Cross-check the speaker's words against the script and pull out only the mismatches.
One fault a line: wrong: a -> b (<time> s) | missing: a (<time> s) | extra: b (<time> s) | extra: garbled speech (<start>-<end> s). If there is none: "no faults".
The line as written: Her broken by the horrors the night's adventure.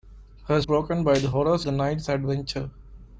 no faults